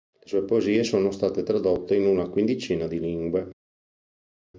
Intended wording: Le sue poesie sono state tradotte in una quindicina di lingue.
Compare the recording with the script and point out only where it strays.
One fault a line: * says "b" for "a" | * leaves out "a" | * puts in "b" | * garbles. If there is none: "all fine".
all fine